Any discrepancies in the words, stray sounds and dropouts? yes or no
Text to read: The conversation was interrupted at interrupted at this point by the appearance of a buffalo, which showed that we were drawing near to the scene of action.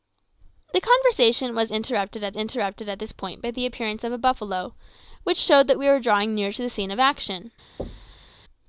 yes